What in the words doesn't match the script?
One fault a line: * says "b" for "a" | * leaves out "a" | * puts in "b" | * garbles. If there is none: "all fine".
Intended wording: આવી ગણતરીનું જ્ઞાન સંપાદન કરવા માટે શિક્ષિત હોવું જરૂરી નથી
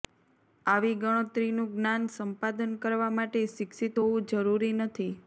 all fine